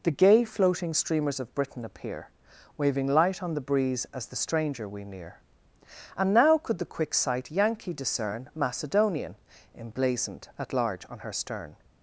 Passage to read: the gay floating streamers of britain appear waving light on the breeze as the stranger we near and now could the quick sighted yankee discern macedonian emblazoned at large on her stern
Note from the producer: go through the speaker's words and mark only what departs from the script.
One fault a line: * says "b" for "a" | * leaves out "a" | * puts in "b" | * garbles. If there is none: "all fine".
* says "sight" for "sighted"